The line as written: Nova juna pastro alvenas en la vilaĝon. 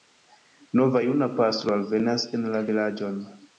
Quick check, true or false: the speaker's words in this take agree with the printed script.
true